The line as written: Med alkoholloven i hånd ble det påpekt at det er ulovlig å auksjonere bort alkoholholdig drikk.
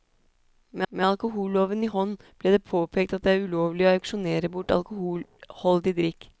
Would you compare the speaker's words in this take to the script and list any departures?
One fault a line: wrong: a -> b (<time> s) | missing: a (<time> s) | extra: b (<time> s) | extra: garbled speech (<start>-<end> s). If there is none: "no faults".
extra: med (0.9 s)